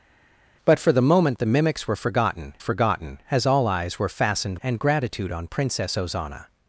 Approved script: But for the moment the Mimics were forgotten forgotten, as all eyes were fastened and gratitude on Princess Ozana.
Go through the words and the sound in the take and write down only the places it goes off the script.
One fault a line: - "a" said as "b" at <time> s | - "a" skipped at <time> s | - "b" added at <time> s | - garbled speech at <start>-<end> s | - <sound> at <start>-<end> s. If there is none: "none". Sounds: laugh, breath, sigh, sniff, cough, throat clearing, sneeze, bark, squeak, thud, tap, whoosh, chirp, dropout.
none